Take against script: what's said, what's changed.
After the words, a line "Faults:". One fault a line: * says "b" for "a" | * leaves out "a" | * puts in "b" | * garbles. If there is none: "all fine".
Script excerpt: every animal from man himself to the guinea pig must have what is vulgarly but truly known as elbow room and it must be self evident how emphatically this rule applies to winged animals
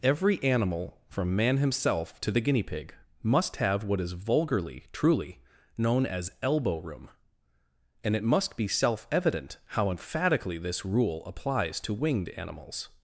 every animal from man himself to the guinea pig must have what is vulgarly truly known as elbow room and it must be self evident how emphatically this rule applies to winged animals
Faults:
* leaves out "but"